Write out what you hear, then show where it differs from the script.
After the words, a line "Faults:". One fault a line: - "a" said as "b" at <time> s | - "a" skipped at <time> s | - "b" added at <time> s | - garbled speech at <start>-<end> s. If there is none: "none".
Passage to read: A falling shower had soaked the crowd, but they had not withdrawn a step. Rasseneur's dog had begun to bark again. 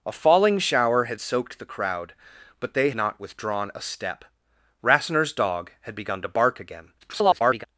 A falling shower had soaked the crowd, but they not withdrawn a step. Rasseneur's dog had begun to bark again. [garbled]
Faults:
- "had" skipped at 2.9 s
- garbled speech at 7.0-7.7 s